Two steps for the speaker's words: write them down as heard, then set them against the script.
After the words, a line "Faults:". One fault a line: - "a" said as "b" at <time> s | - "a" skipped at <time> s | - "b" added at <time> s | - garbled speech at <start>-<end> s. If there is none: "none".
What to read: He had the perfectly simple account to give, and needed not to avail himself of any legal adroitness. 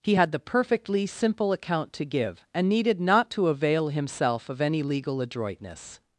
He had the perfectly simple account to give, and needed not to avail himself of any legal adroitness.
Faults:
none